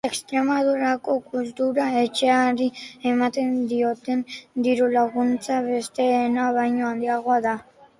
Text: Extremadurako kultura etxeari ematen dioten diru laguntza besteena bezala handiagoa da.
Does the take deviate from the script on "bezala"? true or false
true